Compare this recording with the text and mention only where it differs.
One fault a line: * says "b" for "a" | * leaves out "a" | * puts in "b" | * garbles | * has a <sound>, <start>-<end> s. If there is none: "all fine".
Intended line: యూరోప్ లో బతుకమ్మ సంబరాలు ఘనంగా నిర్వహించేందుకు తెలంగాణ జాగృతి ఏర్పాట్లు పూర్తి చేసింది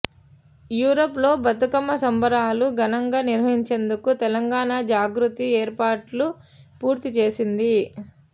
all fine